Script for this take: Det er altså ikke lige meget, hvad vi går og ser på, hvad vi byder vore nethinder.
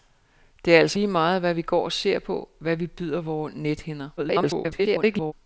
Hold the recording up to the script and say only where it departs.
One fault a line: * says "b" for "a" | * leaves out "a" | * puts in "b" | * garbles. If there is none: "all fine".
* leaves out "ikke"
* garbles